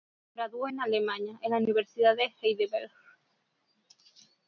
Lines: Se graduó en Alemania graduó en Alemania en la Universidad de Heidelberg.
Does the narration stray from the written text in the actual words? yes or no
yes